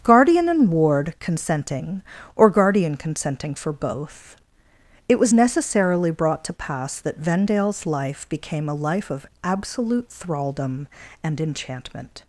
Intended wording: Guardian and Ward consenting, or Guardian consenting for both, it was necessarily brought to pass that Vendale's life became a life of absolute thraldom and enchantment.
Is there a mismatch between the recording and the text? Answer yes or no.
no